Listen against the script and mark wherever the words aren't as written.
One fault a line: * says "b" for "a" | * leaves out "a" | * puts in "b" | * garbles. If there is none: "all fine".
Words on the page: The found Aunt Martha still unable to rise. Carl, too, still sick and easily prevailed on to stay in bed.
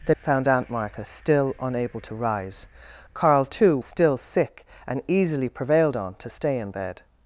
all fine